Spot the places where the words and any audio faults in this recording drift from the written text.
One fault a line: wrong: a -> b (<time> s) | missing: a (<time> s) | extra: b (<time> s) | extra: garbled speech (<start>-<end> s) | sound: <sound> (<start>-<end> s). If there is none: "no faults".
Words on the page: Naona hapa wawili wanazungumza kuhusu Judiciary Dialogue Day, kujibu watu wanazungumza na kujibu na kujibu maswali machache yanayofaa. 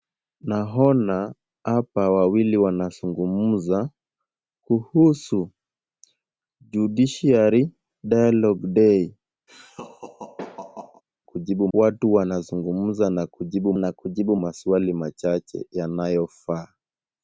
sound: laugh (9.5-11.0 s)